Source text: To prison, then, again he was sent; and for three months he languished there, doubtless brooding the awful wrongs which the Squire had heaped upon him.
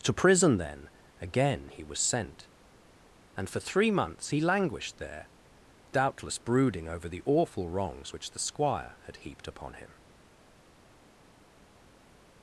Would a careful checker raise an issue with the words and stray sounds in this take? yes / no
yes